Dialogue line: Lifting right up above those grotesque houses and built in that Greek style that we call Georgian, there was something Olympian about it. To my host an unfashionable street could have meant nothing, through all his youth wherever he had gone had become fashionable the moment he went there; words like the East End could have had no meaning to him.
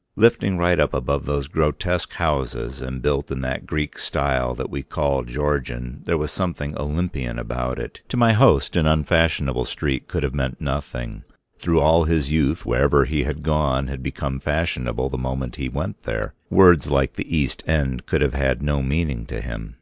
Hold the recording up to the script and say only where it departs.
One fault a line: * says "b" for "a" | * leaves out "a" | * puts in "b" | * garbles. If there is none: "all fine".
all fine